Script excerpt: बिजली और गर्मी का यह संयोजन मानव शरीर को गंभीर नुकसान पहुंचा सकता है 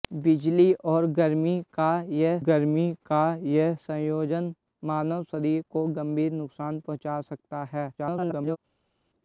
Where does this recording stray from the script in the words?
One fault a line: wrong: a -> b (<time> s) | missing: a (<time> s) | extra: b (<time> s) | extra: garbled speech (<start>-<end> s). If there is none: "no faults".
extra: गर्मी का यह (2.4 s)
extra: garbled speech (8.0-8.6 s)